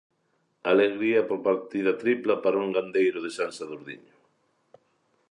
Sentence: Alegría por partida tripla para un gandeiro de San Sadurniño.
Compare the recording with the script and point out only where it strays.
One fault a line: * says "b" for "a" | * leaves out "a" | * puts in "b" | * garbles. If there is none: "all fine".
all fine